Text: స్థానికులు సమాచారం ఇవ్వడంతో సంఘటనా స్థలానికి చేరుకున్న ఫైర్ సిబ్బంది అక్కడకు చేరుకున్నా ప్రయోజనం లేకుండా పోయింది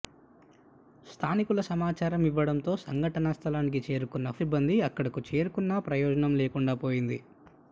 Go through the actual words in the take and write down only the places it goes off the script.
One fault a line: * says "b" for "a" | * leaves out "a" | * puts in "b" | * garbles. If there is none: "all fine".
* leaves out "ఫైర్"